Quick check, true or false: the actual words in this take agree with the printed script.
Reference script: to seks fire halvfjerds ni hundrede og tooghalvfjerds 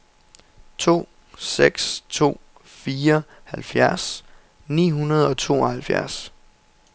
false